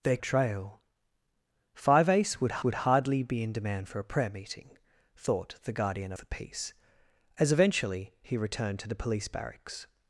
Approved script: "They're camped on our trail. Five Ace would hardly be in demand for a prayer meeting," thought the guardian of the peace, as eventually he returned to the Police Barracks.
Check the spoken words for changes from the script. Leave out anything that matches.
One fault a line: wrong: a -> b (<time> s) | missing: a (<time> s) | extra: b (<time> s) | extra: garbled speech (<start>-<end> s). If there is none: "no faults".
missing: camped on our (0.2 s)
extra: would (2.6 s)
missing: of (6.1 s)